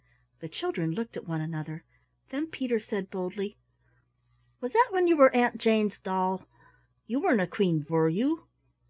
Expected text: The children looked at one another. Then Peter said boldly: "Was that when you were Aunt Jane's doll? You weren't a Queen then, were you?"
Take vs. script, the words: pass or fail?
fail